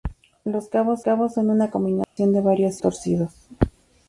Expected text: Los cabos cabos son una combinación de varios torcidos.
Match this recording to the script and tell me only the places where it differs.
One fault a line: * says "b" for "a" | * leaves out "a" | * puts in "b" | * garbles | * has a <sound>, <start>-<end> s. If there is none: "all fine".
* has a dropout, 2.0-2.2 s